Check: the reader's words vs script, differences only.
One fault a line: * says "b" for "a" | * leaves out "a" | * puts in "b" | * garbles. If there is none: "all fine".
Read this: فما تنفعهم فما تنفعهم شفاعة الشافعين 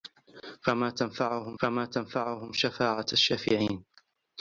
all fine